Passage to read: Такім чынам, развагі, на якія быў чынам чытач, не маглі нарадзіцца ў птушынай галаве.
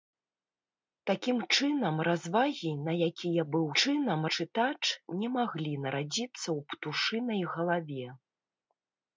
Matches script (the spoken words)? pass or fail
pass